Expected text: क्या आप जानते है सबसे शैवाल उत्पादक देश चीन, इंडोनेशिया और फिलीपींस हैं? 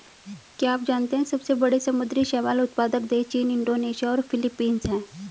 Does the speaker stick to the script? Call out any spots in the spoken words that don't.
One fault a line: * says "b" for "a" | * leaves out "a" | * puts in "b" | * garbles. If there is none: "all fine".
* puts in "बड़े समुद्री"